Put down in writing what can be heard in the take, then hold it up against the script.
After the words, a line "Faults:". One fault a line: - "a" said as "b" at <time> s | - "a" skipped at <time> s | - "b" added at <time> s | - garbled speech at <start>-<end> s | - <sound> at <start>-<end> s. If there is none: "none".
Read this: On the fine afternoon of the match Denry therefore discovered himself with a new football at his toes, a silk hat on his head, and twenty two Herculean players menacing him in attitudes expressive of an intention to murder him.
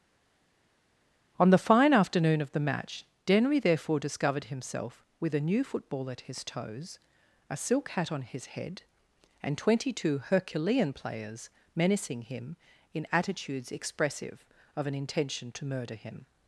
On the fine afternoon of the match Denry therefore discovered himself with a new football at his toes, a silk hat on his head, and twenty two Herculean players menacing him in attitudes expressive of an intention to murder him.
Faults:
none